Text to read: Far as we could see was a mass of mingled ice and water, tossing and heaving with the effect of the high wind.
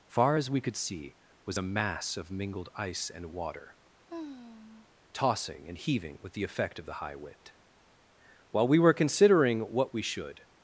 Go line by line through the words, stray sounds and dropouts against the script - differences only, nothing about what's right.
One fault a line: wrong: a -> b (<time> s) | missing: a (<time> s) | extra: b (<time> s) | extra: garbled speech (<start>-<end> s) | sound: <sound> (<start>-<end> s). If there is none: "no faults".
sound: sigh (4.1-4.9 s)
extra: While we were considering what we should (8.5 s)